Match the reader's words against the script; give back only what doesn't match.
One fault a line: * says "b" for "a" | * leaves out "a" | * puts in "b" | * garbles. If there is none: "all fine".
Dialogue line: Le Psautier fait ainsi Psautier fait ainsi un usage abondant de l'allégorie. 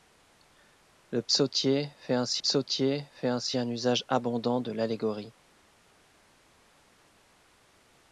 all fine